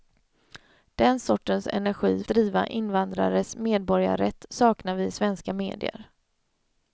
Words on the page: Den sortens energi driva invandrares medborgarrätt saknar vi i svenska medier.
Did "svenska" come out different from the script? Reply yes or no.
no